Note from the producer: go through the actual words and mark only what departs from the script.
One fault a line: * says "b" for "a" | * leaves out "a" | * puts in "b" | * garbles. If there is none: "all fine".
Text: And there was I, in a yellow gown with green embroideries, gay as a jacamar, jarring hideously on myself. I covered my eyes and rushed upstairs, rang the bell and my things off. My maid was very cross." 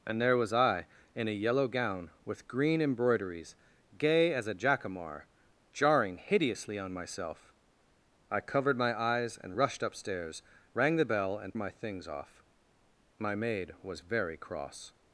all fine